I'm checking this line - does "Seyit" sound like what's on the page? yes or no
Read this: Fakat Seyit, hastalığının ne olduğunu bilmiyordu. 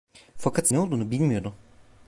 no